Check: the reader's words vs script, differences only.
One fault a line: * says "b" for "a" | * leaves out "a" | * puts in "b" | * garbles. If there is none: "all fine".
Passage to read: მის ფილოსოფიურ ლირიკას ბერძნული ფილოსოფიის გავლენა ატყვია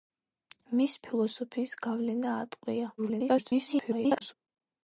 * leaves out "ფილოსოფიურ ლირიკას ბერძნული"
* garbles